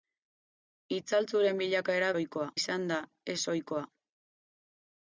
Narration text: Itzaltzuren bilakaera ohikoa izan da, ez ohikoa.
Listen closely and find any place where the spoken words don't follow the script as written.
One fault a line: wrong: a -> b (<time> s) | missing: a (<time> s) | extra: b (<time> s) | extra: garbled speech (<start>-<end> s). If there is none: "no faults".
no faults